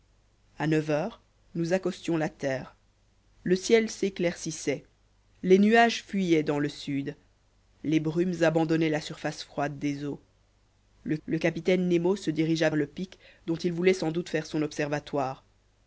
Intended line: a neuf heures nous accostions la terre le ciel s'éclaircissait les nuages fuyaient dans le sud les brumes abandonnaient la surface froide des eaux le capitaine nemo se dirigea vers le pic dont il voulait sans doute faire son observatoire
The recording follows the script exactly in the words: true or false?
false